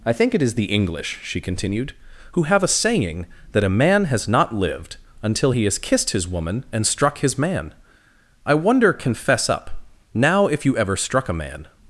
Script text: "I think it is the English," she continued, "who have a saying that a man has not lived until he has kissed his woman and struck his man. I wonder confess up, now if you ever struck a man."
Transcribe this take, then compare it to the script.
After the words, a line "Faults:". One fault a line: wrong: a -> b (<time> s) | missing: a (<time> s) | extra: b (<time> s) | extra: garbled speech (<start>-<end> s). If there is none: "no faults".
"I think it is the English," she continued, "who have a saying that a man has not lived until he has kissed his woman and struck his man. I wonder confess up, now if you ever struck a man."
Faults:
no faults